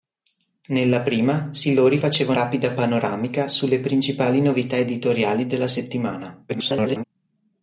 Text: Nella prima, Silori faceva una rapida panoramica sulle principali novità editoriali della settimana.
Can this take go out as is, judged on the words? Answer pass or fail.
fail